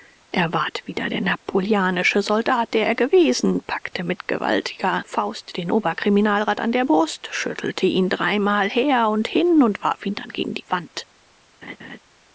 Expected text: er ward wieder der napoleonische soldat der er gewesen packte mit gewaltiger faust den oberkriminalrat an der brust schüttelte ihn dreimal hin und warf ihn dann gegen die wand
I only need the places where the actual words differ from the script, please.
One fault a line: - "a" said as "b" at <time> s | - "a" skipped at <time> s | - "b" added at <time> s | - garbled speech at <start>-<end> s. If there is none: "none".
- "her und" added at 8.7 s